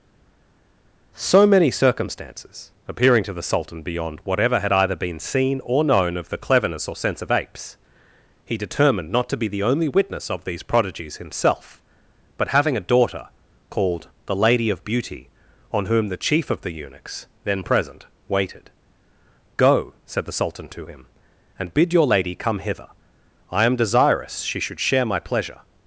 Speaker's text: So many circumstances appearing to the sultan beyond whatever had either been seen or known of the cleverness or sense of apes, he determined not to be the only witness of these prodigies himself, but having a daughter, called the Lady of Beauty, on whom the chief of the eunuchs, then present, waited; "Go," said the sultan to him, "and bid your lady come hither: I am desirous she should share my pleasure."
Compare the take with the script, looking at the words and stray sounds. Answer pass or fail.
pass